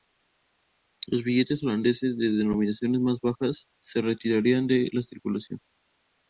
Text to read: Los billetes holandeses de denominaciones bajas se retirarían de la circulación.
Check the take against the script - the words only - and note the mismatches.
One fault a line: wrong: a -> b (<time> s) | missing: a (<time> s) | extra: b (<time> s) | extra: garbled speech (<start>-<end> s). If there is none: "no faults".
extra: más (3.0 s)